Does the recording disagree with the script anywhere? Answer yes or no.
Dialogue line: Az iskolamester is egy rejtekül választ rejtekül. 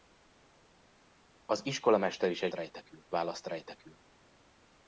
no